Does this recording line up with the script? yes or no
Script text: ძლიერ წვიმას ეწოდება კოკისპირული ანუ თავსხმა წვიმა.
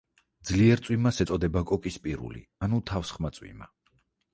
yes